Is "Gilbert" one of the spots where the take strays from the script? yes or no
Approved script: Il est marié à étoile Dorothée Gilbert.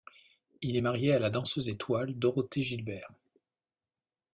no